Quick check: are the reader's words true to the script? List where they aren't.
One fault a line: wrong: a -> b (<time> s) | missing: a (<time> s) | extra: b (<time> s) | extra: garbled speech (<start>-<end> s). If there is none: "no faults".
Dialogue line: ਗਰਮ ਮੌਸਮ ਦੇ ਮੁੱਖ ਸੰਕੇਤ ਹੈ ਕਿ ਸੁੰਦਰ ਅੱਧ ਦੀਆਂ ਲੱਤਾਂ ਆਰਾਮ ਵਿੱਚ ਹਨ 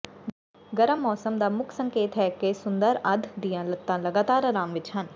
wrong: ਦੇ -> ਦਾ (1.4 s)
extra: ਲਗਾਤਾਰ (4.0 s)